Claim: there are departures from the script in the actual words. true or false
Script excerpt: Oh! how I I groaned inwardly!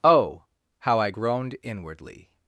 true